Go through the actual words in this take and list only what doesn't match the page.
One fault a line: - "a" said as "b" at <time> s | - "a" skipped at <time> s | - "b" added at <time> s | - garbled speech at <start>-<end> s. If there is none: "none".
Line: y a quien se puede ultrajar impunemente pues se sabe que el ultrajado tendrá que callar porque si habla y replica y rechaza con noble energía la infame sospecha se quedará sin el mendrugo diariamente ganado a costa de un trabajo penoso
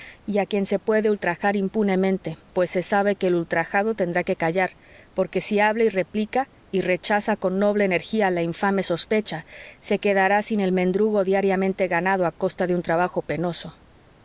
none